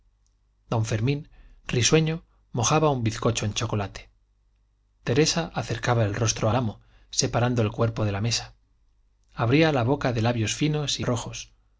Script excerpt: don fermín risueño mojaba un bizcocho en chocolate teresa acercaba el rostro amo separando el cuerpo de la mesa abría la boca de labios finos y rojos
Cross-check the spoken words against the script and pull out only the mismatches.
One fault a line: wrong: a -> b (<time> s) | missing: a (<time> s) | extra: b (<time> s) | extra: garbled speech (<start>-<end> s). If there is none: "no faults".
no faults